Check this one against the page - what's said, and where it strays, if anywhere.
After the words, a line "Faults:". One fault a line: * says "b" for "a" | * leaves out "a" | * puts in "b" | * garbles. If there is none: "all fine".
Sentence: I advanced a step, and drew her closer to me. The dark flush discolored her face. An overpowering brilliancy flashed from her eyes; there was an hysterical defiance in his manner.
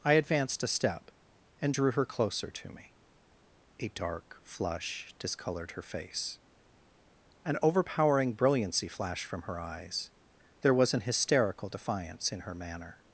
I advanced a step, and drew her closer to me. A dark flush discolored her face. An overpowering brilliancy flashed from her eyes; there was an hysterical defiance in her manner.
Faults:
* says "A" for "The"
* says "her" for "his"